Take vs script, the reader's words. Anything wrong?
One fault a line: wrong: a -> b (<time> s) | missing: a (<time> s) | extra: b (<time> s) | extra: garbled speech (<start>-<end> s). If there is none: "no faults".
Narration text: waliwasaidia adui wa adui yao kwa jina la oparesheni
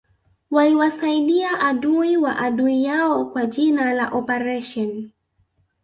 no faults